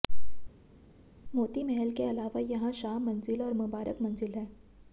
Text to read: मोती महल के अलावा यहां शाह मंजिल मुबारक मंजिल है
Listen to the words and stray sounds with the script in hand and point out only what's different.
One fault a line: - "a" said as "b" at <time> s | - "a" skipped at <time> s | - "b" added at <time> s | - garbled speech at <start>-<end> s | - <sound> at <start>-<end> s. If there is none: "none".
- "और" added at 3.4 s